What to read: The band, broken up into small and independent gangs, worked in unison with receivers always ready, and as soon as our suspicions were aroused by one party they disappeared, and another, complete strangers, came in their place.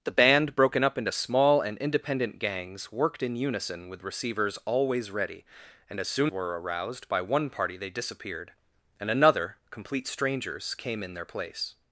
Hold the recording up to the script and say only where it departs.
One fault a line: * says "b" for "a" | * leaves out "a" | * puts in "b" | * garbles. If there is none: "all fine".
* leaves out "as our suspicions"